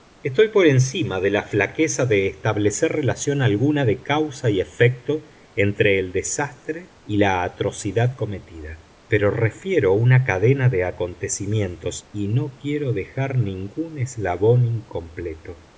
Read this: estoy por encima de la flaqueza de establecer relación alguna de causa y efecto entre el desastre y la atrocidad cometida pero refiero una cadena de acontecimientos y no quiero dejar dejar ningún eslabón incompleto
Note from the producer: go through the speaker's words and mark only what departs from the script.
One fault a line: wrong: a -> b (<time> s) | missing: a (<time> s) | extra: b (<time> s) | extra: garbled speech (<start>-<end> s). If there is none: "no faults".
missing: dejar (13.4 s)